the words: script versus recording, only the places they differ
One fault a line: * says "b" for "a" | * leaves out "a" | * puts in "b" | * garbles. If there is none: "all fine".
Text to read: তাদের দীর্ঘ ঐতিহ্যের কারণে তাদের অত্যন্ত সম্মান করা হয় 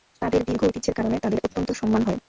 * leaves out "করা"